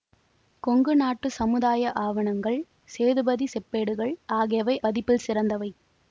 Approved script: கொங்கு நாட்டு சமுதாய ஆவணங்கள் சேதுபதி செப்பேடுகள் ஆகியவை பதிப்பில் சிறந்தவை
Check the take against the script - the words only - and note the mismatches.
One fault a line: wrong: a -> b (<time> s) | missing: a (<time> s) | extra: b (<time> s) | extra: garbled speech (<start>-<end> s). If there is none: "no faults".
no faults